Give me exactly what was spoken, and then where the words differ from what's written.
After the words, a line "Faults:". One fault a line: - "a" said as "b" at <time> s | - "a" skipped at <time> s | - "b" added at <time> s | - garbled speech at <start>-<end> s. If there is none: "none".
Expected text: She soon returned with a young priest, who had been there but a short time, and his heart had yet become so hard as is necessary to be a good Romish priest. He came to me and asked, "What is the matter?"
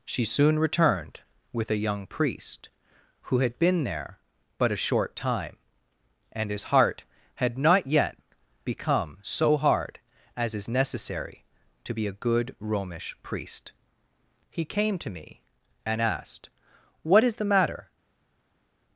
She soon returned with a young priest, who had been there but a short time, and his heart had not yet become so hard as is necessary to be a good Romish priest. He came to me and asked, "What is the matter?"
Faults:
- "not" added at 7.6 s